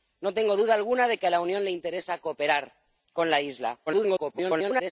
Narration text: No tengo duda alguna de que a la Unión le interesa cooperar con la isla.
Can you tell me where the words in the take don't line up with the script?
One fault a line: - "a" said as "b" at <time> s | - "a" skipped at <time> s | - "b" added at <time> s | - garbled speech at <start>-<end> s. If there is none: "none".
- garbled speech at 3.9-4.9 s